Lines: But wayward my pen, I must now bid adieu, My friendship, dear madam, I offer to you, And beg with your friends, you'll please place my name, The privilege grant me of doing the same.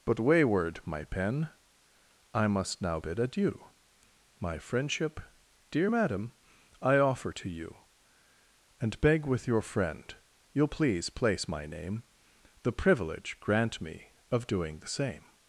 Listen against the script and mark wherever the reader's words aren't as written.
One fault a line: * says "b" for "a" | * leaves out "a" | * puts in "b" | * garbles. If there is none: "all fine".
* says "friend" for "friends"